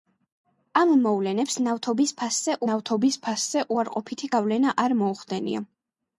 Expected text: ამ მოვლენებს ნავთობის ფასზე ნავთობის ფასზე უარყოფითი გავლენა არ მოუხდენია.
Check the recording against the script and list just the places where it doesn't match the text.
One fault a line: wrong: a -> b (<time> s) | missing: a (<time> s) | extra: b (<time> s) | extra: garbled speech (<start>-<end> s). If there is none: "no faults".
no faults